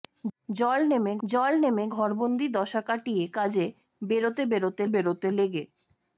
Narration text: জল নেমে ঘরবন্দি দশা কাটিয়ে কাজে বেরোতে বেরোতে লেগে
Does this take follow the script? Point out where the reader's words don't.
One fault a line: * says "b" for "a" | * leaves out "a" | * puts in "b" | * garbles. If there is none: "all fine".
* puts in "জল নেমে"
* puts in "বেরোতে"